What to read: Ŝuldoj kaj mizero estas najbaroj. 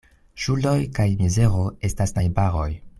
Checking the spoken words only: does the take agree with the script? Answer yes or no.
yes